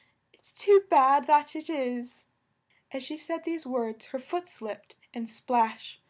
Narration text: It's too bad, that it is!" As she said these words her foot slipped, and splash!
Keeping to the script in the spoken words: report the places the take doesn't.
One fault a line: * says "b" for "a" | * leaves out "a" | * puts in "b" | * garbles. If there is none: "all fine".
all fine